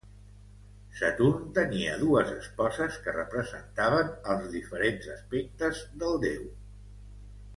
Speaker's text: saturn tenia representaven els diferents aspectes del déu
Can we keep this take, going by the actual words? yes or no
no